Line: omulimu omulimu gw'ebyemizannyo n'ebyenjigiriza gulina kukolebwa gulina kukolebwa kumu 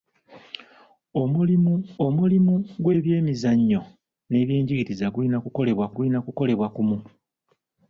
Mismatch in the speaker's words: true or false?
false